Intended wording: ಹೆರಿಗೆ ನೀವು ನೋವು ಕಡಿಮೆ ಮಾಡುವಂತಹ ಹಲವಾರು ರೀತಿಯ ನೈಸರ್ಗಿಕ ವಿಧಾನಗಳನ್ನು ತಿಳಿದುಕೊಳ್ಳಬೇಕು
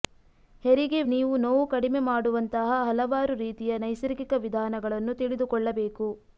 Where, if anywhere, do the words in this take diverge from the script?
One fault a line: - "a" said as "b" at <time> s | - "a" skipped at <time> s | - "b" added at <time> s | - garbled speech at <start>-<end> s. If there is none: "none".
none